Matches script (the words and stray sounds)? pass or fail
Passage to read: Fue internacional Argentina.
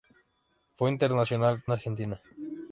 pass